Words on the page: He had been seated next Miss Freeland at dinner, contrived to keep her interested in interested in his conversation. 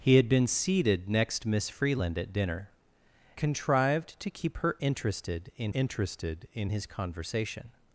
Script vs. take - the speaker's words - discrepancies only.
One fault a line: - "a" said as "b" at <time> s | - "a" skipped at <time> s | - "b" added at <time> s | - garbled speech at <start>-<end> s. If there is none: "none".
none